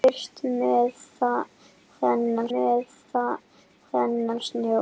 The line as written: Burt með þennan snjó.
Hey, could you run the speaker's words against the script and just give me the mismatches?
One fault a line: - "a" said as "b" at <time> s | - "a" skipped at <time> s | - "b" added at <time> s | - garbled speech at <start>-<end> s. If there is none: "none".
- "með þennan" added at 2.5 s